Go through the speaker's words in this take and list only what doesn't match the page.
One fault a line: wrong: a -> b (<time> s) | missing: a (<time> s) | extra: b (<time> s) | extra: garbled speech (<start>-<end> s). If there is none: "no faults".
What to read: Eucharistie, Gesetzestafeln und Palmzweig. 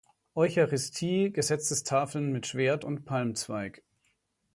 extra: mit Schwert (2.3 s)